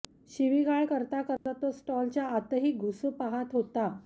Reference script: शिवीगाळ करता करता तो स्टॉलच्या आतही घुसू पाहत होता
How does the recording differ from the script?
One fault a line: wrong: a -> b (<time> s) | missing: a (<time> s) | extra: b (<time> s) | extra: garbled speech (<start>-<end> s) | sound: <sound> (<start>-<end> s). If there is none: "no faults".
sound: dropout (1.4-1.5 s)